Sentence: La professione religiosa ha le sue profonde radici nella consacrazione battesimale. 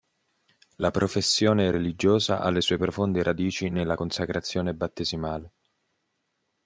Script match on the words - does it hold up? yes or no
yes